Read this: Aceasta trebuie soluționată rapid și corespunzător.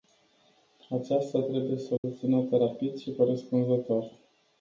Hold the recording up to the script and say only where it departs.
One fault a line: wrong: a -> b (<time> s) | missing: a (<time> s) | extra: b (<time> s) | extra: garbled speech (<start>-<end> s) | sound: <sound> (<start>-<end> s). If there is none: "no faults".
sound: dropout (2.0-2.0 s)